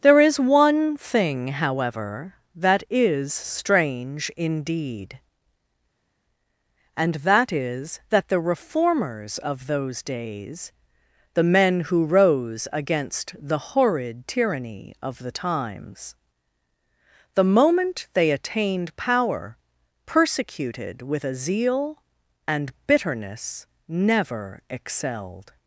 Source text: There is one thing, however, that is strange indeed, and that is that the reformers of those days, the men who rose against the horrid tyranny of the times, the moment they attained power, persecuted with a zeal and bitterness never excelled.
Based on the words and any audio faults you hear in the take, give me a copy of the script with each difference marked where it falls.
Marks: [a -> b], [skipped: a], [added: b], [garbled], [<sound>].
There is one thing, however, that is strange indeed, and that is that the reformers of those days, the men who rose against the horrid tyranny of the times, the moment they attained power, persecuted with a zeal and bitterness never excelled.